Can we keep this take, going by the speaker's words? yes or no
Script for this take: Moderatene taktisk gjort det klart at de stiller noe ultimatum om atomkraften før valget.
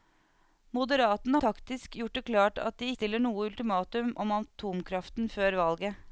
yes